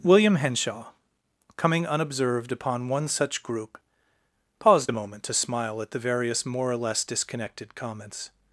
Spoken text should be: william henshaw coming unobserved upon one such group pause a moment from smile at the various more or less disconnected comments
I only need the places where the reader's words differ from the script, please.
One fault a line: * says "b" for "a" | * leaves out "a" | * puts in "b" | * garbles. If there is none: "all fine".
* says "paused" for "pause"
* says "to" for "from"